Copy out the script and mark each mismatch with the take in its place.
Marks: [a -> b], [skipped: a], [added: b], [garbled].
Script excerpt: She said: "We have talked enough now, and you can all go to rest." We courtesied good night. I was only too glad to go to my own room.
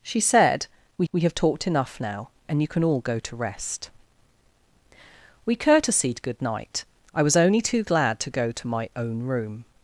She said: "We [added: we] have talked enough now, and you can all go to rest." We courtesied good night. I was only too glad to go to my own room.